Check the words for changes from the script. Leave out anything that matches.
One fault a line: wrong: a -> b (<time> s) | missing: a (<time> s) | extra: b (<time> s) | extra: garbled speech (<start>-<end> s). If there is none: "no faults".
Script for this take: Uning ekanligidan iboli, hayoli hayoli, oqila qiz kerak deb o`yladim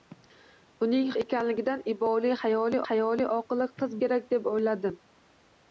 no faults